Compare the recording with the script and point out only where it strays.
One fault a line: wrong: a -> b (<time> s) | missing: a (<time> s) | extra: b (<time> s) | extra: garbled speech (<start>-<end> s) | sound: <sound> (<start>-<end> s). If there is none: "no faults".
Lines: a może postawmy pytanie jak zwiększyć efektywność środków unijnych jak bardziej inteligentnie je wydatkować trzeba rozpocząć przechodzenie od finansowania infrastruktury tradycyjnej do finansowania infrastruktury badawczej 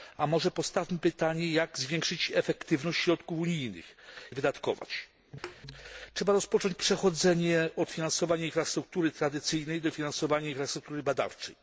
missing: jak bardziej inteligentnie (4.0 s)
sound: thud (5.4-5.6 s)